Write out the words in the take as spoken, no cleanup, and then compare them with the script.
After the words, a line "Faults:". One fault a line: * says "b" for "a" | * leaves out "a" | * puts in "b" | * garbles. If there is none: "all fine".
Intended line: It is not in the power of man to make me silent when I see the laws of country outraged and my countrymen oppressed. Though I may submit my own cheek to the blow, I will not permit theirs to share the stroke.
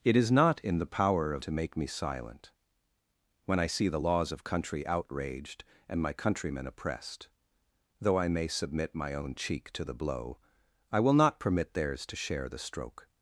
It is not in the power of to make me silent when I see the laws of country outraged and my countrymen oppressed. Though I may submit my own cheek to the blow, I will not permit theirs to share the stroke.
Faults:
* leaves out "man"